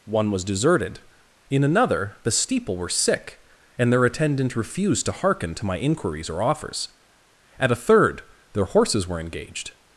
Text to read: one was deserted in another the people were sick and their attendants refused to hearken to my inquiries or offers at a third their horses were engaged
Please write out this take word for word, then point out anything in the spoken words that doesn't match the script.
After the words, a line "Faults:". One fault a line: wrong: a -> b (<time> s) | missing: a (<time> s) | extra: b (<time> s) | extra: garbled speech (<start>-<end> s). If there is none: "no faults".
one was deserted in another the steeple were sick and their attendant refused to hearken to my inquiries or offers at a third their horses were engaged
Faults:
wrong: people -> steeple (2.3 s)
wrong: attendants -> attendant (4.1 s)